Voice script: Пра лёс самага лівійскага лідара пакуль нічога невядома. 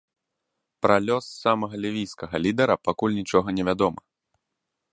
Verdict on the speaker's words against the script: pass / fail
pass